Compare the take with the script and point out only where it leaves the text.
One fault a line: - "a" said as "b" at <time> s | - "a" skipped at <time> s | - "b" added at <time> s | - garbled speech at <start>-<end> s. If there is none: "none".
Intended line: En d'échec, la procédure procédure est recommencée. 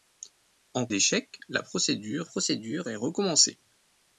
none